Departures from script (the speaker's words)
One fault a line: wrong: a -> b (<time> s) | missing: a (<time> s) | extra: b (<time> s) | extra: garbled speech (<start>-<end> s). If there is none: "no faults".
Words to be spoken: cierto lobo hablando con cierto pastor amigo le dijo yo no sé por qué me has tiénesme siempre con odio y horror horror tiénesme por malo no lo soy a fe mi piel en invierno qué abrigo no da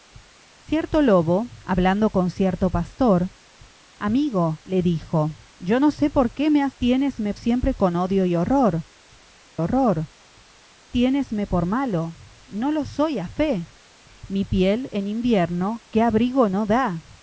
no faults